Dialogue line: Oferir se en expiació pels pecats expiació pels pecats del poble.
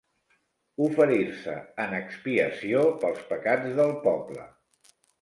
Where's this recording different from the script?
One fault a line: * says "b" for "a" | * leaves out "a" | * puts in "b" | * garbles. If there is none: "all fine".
* leaves out "expiació pels pecats"